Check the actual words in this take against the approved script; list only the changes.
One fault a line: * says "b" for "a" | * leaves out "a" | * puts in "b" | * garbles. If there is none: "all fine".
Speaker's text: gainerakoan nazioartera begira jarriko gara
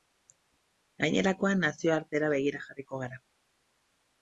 all fine